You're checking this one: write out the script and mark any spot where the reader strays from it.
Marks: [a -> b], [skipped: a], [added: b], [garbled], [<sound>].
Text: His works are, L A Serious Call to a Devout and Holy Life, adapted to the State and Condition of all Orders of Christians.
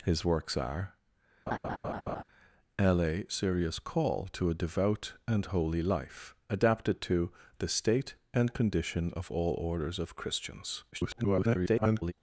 His works are, [laugh] L A Serious Call to a Devout and Holy Life, adapted to the State and Condition of all Orders of Christians. [garbled]